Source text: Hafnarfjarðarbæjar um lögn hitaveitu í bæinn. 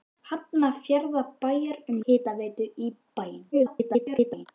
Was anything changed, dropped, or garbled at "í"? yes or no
no